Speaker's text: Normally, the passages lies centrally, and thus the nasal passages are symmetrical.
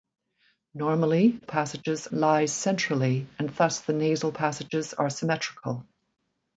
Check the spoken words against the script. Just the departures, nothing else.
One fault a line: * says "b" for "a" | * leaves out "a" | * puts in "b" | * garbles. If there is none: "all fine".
all fine